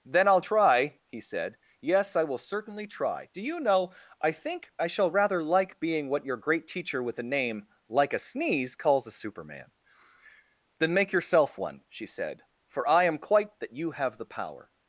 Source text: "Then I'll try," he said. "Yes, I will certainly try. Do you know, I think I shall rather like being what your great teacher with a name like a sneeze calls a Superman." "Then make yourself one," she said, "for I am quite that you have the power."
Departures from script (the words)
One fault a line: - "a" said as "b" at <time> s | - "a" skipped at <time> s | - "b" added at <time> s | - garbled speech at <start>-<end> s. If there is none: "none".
none